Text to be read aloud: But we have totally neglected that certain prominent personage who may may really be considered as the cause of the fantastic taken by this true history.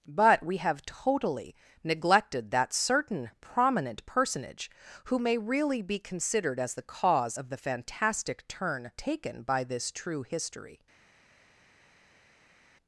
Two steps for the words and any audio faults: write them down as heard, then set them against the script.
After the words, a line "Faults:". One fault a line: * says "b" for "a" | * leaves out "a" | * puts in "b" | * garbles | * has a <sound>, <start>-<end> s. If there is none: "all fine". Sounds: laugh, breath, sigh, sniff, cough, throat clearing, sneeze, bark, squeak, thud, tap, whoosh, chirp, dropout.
But we have totally neglected that certain prominent personage who may really be considered as the cause of the fantastic turn taken by this true history.
Faults:
* leaves out "may"
* puts in "turn"